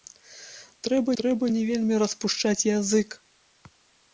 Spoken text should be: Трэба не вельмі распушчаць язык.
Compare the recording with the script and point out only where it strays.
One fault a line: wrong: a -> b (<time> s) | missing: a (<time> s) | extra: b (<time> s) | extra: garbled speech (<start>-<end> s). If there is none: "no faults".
extra: трэба (1.2 s)